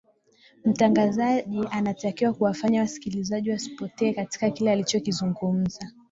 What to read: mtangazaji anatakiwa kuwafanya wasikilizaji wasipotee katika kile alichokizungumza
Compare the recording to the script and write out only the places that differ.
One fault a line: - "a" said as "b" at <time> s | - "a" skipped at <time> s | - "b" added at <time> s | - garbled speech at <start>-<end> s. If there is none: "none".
none